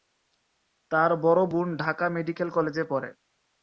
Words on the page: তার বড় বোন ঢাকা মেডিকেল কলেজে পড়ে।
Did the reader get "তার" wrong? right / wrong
right